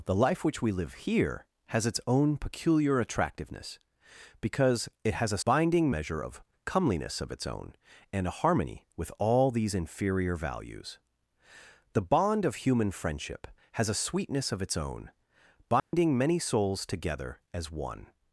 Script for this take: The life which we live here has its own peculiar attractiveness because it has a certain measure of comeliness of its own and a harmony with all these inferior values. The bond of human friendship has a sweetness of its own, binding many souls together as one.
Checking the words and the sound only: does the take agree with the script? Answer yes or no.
no